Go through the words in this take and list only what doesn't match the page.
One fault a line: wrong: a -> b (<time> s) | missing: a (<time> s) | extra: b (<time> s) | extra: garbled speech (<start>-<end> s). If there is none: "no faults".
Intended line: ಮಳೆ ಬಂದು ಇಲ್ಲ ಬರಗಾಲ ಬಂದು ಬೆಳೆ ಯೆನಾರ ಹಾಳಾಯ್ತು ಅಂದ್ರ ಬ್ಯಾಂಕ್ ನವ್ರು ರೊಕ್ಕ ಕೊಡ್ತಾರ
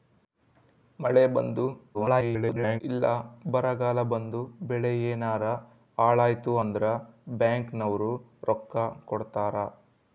extra: garbled speech (1.9-2.8 s)